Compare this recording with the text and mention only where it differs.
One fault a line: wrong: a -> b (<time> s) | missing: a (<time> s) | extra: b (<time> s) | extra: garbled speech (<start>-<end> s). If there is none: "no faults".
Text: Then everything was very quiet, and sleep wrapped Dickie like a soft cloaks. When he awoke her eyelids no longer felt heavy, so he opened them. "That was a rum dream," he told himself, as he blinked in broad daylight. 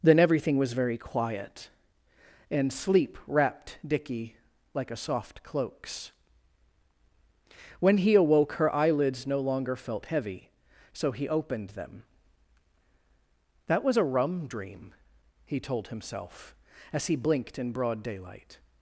no faults